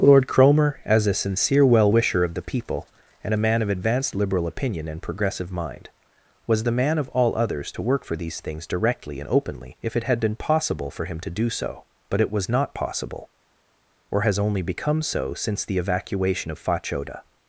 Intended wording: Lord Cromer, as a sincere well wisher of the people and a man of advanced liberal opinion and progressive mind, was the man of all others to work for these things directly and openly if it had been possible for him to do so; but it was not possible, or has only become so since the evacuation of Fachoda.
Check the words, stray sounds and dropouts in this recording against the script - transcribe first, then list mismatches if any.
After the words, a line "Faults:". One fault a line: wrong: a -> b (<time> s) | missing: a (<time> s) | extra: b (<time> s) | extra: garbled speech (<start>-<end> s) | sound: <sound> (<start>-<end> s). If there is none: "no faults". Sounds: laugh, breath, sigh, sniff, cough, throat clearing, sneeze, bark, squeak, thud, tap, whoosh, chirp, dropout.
Lord Cromer, as a sincere well wisher of the people and a man of advanced liberal opinion and progressive mind, was the man of all others to work for these things directly and openly if it had been possible for him to do so; but it was not possible, or has only become so since the evacuation of Fachoda.
Faults:
no faults